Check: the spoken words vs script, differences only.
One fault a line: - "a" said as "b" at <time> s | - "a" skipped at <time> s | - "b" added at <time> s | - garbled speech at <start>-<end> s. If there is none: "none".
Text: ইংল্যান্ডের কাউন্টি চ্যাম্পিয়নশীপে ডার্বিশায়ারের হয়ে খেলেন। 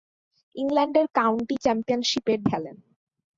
- "ডার্বিশায়ারের হয়ে" skipped at 2.3 s